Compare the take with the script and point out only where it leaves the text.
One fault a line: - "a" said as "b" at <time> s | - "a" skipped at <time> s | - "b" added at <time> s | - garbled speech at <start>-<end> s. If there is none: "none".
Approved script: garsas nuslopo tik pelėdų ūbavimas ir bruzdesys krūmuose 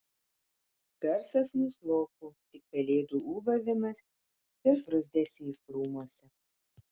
none